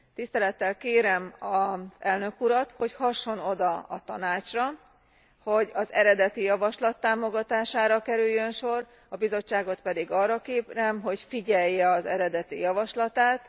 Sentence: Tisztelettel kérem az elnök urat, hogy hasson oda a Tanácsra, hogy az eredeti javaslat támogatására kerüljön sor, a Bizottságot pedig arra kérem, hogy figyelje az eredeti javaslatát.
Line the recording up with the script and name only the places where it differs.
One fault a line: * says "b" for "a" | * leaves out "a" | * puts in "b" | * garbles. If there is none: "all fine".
all fine